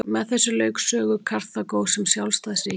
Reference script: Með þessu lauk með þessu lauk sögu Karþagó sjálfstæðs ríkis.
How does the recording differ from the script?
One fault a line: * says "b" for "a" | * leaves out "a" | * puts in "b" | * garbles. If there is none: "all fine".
* leaves out "með þessu lauk"
* puts in "sem"